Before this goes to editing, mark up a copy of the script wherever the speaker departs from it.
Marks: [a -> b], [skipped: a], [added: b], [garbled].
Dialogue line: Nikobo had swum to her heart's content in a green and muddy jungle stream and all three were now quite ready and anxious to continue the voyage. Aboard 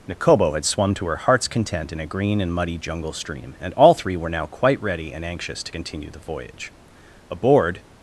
Nikobo had swum to her heart's content in a green and muddy jungle stream and all three were now quite ready and anxious to continue the voyage. Aboard